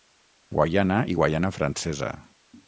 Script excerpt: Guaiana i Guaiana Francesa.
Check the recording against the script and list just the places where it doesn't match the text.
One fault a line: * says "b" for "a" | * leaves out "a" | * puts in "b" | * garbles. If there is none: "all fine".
all fine